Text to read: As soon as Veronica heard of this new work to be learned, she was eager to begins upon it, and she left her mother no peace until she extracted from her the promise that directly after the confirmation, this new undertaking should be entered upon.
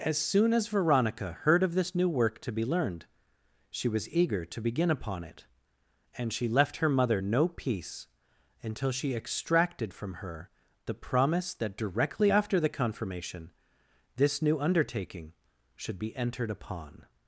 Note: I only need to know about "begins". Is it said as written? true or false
false